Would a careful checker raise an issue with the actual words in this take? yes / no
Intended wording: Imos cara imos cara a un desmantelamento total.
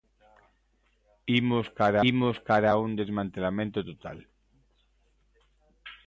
no